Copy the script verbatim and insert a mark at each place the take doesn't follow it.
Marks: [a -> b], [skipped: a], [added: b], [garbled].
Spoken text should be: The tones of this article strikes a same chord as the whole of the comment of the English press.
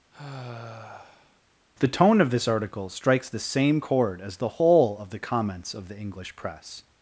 The [tones -> tone] of this article strikes [a -> the] same chord as the whole of the [comment -> comments] of the English press.